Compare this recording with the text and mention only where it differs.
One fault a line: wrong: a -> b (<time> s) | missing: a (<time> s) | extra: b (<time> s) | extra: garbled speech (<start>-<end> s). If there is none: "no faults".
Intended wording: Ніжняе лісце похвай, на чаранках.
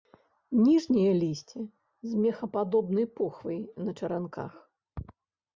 extra: з мехападобнай (2.1 s)